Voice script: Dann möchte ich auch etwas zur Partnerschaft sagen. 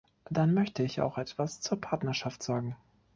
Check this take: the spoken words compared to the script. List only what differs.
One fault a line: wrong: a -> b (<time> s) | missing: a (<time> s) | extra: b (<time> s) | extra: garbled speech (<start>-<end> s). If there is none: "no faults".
no faults